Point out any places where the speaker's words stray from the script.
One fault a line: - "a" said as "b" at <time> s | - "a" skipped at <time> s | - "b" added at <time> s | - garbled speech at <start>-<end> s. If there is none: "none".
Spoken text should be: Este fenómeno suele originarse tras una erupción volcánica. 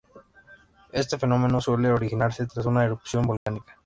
none